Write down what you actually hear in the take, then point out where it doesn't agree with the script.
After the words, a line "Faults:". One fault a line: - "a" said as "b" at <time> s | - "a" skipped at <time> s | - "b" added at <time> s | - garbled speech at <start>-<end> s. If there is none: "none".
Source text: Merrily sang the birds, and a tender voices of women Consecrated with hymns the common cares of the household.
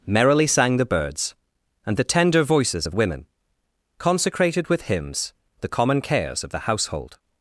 Merrily sang the birds, and the tender voices of women Consecrated with hymns the common cares of the household.
Faults:
- "a" said as "the" at 1.9 s